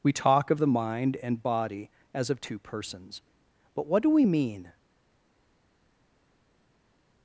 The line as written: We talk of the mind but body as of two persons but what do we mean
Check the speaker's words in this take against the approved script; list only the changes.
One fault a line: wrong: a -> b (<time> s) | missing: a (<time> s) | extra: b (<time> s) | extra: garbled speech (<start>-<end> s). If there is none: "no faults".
wrong: but -> and (1.2 s)